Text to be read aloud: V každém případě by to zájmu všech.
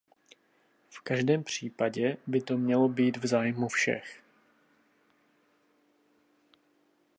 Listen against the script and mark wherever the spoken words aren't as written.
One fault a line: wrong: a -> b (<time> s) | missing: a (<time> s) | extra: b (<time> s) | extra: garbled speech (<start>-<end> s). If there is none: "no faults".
extra: mělo být v (2.6 s)